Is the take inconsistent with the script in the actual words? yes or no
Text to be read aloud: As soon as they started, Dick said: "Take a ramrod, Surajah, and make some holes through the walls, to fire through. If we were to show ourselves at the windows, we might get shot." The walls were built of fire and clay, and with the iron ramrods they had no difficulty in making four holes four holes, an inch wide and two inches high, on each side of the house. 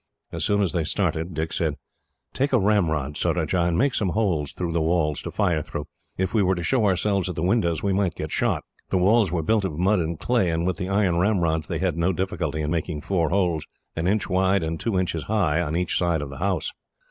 yes